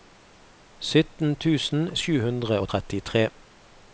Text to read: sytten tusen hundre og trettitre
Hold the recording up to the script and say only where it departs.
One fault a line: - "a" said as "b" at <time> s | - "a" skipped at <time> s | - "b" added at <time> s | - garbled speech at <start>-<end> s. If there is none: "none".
- "sju" added at 2.0 s